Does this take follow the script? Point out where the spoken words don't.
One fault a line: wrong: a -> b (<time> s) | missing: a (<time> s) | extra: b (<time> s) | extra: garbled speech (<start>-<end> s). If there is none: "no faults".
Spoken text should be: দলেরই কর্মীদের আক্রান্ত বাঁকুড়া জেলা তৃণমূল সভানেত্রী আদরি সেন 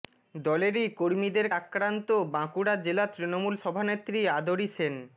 no faults